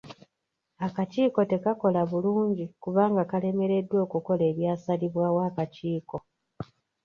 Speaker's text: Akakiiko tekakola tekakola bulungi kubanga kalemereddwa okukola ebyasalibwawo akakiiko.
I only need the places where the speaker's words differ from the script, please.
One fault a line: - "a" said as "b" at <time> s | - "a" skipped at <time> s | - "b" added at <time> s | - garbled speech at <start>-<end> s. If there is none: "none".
- "tekakola" skipped at 2.0 s